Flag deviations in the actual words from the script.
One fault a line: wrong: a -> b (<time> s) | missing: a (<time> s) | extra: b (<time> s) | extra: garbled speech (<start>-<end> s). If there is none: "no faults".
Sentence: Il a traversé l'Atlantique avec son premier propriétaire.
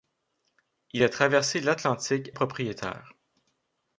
missing: avec son premier (2.3 s)